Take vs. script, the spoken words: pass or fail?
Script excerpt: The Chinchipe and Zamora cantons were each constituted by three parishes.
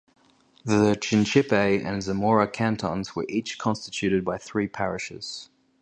pass